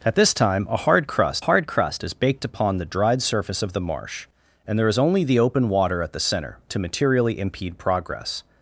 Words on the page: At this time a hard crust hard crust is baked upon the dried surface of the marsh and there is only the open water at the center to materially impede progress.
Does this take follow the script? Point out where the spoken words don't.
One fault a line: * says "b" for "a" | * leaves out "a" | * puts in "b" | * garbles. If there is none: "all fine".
all fine